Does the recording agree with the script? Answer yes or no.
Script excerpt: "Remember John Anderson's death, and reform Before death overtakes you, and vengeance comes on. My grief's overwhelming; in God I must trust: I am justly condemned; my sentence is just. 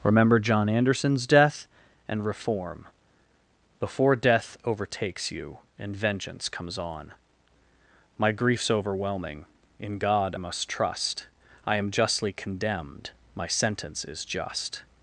no